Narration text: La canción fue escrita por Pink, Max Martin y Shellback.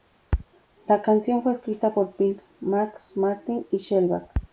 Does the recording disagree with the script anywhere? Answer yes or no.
no